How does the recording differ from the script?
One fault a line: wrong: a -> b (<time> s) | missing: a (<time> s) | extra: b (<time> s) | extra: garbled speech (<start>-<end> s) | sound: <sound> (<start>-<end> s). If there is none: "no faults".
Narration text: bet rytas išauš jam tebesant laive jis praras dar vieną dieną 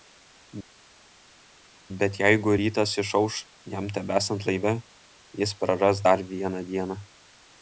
extra: jeigu (2.2 s)